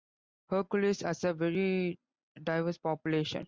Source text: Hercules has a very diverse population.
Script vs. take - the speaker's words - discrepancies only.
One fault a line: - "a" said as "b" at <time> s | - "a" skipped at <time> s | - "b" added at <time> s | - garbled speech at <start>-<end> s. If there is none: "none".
none